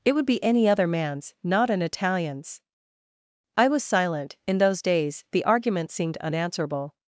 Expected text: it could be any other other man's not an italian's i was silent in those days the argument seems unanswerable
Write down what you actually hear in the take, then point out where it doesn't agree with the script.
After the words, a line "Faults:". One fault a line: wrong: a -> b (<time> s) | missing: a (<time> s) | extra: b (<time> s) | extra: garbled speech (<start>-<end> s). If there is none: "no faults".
it would be any other man's not an italian's i was silent in those days the argument seemed unanswerable
Faults:
wrong: could -> would (0.1 s)
missing: other (0.9 s)
wrong: seems -> seemed (5.9 s)